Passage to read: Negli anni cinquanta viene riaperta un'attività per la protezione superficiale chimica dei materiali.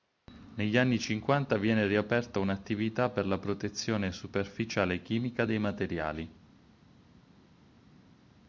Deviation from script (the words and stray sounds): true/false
false